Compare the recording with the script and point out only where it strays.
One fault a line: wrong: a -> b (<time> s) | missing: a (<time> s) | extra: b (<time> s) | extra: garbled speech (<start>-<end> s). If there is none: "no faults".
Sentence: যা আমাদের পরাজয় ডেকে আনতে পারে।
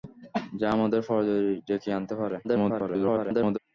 extra: garbled speech (2.4-3.6 s)